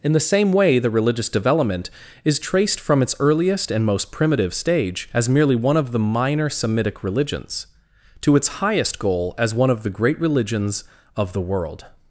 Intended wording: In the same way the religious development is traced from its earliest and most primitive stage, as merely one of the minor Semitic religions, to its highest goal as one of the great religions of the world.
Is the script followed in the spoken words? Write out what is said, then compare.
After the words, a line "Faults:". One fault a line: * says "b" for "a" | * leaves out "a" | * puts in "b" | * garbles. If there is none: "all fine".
In the same way the religious development is traced from its earliest and most primitive stage, as merely one of the minor Semitic religions, to its highest goal as one of the great religions of the world.
Faults:
all fine